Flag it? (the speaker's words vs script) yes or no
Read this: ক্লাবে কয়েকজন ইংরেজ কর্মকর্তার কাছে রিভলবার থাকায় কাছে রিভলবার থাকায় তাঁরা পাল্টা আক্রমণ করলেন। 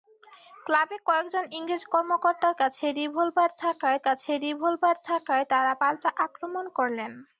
no